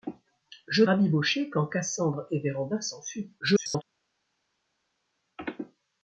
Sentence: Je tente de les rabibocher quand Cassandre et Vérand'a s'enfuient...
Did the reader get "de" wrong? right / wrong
wrong